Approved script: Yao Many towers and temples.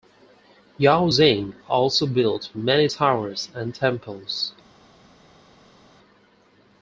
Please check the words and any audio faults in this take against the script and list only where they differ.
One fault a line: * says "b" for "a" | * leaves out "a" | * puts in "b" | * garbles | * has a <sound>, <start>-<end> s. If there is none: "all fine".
* puts in "Xing also built"